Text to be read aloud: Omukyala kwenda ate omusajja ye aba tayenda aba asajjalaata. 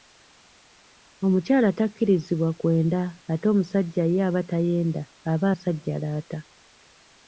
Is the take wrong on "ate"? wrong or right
right